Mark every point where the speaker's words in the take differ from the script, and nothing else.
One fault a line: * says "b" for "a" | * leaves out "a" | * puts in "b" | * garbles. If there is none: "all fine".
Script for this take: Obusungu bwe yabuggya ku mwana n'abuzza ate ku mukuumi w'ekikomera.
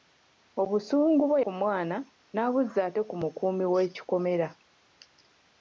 * leaves out "yabuggya"